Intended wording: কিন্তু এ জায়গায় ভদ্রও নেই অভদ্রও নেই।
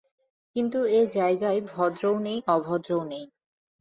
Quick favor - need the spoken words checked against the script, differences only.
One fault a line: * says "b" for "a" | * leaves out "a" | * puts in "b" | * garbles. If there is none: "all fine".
all fine